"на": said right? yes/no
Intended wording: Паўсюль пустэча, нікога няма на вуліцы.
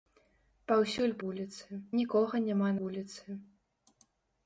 no